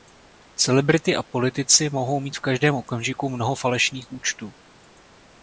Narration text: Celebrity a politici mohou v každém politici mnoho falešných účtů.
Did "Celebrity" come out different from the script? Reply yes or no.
no